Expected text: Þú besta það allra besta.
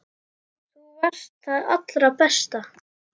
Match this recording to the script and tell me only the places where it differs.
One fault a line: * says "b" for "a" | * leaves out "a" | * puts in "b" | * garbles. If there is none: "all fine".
* says "varst" for "besta"